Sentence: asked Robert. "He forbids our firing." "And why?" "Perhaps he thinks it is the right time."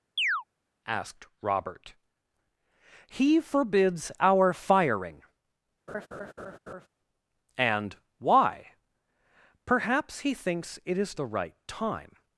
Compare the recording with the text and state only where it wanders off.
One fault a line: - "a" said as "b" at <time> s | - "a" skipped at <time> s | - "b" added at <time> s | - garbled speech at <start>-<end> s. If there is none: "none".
none